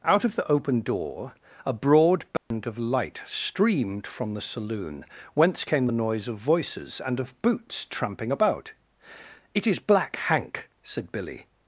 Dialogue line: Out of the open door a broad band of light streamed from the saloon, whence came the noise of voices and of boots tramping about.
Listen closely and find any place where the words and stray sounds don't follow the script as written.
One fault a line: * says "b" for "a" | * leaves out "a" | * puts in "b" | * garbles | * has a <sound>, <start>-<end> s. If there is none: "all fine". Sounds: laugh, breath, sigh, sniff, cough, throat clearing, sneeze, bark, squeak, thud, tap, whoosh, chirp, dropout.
* has a dropout, 2.4-2.5 s
* puts in "It is Black Hank said Billy"